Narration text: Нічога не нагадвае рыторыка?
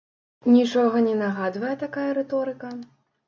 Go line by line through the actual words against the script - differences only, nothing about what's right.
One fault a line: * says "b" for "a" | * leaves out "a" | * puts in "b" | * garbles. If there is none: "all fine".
* puts in "такая"